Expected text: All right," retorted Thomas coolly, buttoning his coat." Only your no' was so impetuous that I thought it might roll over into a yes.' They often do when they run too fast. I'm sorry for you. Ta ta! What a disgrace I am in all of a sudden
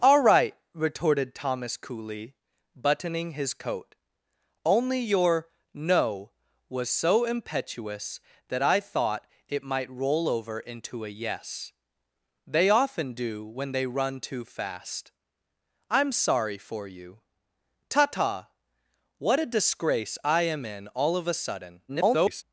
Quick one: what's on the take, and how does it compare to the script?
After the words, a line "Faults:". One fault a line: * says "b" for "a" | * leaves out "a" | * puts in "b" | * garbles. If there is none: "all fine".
All right," retorted Thomas coolly, buttoning his coat." Only your no' was so impetuous that I thought it might roll over into a yes.' They often do when they run too fast. I'm sorry for you. Ta ta! What a disgrace I am in all of a sudden [garbled]
Faults:
* garbles